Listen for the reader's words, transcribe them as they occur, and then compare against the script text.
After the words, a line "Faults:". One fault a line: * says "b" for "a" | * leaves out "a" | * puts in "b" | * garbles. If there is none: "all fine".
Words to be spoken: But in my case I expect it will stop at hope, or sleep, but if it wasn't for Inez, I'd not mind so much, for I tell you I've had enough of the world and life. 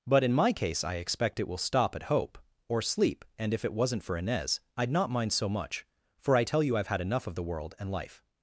But in my case I expect it will stop at hope, or sleep, and if it wasn't for Inez, I'd not mind so much, for I tell you I've had enough of the world and life.
Faults:
* says "and" for "but"